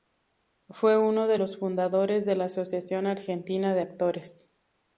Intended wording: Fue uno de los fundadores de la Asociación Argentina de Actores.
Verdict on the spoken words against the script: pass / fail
pass